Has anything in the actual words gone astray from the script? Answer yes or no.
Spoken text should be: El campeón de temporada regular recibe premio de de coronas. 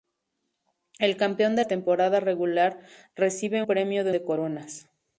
no